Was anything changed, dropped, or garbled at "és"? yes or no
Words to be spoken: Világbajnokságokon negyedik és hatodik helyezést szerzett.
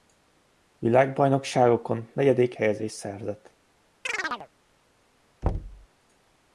yes